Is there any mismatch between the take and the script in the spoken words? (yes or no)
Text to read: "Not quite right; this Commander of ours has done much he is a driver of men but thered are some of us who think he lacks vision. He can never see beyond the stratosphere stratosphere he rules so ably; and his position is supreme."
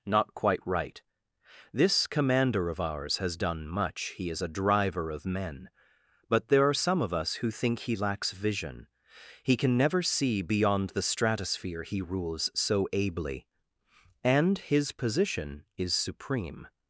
yes